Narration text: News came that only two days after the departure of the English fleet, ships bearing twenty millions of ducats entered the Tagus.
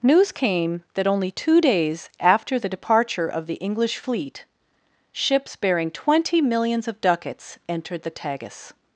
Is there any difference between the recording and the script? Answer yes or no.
no